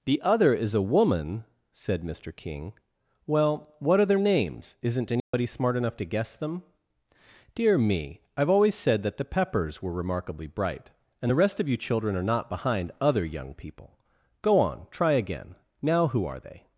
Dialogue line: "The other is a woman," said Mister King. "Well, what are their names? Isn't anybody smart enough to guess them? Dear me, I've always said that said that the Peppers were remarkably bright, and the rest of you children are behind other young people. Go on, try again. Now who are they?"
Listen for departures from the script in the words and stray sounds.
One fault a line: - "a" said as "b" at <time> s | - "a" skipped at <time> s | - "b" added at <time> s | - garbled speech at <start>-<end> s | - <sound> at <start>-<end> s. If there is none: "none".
- dropout at 5.2-5.3 s
- "said that" skipped at 9.2 s
- "not" added at 12.3 s